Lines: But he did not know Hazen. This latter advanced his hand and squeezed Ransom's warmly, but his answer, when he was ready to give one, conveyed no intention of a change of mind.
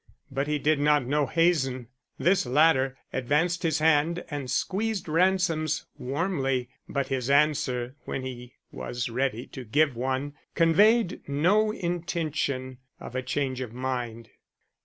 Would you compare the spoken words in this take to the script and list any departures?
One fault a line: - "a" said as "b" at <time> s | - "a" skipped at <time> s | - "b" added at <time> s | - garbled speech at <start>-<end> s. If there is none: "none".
none